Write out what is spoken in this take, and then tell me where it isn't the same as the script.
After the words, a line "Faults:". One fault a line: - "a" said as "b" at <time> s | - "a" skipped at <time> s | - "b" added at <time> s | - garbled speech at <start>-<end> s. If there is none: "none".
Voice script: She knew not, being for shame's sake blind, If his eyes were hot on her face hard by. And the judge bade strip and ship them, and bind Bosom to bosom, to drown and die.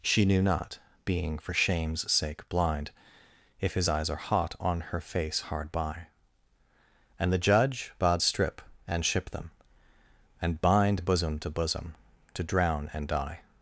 She knew not, being for shame's sake blind, If his eyes are hot on her face hard by. And the judge bade strip and ship them, and bind Bosom to bosom, to drown and die.
Faults:
- "were" said as "are" at 4.1 s